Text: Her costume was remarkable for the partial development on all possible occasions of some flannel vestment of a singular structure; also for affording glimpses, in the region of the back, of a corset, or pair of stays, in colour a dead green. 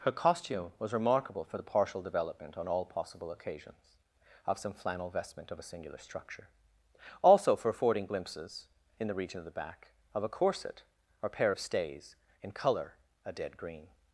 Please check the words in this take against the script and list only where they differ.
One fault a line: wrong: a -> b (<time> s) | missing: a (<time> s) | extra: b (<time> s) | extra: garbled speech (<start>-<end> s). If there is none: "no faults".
no faults